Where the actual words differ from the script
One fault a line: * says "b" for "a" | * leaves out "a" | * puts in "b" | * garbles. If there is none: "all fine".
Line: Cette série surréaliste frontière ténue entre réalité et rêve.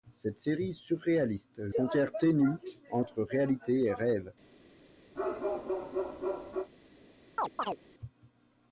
all fine